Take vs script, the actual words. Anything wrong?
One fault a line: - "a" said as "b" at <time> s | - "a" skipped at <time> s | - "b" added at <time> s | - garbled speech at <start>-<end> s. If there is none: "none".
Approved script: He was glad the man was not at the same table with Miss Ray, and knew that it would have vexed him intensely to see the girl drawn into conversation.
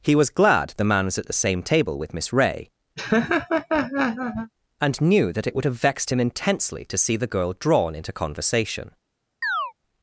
- "not" skipped at 1.2 s